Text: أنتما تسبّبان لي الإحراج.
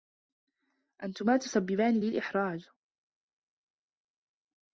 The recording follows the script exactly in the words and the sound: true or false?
true